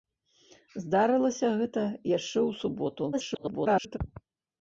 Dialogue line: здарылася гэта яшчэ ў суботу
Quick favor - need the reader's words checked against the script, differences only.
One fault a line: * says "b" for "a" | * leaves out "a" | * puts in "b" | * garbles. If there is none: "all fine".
* garbles